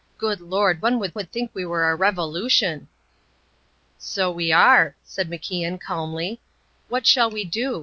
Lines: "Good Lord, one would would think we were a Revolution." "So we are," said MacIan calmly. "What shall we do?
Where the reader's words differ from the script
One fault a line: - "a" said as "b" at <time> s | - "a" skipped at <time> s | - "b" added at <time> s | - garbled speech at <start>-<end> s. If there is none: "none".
none